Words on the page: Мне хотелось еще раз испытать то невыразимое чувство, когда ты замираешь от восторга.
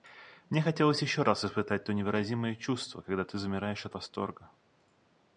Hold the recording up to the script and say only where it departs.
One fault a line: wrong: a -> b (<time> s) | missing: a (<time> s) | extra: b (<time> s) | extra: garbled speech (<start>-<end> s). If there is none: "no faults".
no faults